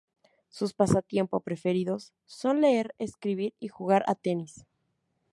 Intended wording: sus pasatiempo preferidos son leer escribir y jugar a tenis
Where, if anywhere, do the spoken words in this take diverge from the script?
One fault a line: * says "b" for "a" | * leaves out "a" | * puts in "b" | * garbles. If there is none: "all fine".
all fine